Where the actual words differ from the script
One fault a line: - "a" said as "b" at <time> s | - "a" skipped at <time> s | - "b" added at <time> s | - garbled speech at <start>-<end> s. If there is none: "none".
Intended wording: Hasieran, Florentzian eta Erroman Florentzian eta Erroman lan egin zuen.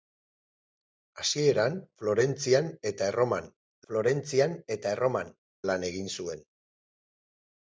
none